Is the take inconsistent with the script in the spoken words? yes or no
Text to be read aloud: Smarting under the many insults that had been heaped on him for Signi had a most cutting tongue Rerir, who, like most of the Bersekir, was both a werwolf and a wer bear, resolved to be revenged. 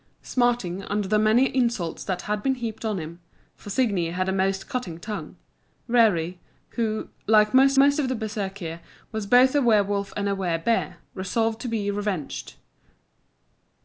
yes